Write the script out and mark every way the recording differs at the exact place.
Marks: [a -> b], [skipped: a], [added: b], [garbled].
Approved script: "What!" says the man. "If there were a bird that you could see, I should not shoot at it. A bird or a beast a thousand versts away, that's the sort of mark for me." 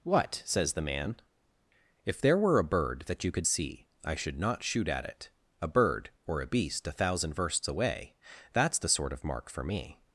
"What!" says the man. "If there were a bird that you could see, I should not shoot at it. A bird or a beast a thousand versts away, that's the sort of mark for me."